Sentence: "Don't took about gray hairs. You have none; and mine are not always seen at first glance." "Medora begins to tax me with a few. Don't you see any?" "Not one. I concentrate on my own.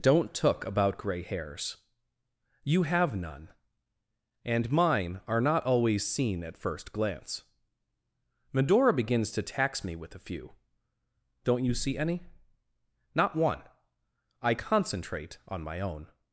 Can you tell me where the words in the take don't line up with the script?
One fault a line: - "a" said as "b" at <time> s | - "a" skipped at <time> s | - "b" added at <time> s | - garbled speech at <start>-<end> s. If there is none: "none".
none